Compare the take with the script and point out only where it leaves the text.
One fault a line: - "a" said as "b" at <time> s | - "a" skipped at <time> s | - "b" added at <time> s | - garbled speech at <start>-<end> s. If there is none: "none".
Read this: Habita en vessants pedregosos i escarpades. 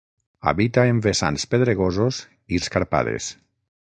none